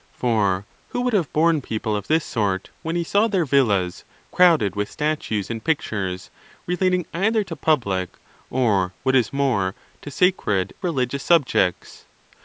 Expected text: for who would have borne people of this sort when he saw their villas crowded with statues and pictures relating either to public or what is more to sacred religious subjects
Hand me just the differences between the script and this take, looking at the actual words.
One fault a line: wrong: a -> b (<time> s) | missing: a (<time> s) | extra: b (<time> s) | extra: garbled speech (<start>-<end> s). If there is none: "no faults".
no faults